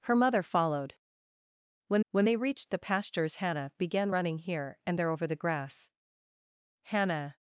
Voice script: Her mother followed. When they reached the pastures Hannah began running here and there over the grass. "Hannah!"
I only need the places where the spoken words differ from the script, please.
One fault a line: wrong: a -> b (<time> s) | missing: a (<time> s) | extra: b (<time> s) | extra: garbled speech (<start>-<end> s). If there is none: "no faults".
extra: when (2.1 s)